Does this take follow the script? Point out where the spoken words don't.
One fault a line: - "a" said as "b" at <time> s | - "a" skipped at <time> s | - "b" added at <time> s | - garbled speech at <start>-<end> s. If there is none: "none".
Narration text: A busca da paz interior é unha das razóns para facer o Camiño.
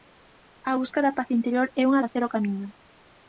- "das razóns para" skipped at 2.0 s